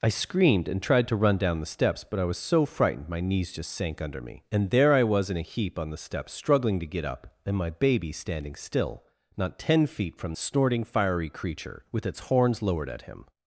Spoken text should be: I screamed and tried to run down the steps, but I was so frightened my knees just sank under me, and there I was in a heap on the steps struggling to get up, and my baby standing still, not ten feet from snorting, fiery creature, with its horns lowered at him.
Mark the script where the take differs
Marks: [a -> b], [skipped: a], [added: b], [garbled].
I screamed and tried to run down the steps, but I was so frightened my knees just sank under me, and there I was in a heap on the steps struggling to get up, and my baby standing still, not ten feet from snorting, fiery creature, with its horns lowered at him.